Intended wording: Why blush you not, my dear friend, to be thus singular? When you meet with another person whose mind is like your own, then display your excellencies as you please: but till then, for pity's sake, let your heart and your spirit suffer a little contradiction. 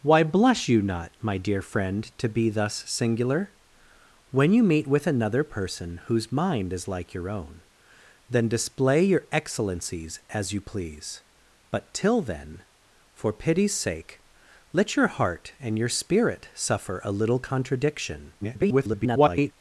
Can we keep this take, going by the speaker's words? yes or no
no